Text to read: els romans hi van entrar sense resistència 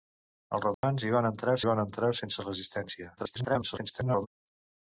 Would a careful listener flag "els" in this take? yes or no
no